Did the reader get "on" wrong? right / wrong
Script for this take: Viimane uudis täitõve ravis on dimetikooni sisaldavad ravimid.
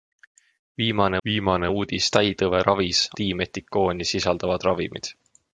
wrong